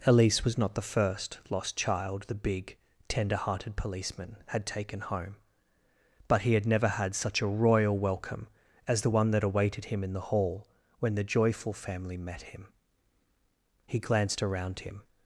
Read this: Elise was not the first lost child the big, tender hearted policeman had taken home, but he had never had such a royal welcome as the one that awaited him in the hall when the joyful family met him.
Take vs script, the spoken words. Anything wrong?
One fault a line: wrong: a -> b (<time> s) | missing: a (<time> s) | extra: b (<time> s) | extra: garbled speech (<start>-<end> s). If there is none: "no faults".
extra: He glanced around him (13.9 s)